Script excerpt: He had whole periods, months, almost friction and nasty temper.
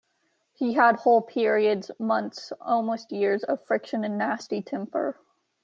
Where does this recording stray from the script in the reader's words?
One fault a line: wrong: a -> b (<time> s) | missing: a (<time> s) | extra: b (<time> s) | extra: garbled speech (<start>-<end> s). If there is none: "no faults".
extra: years of (3.1 s)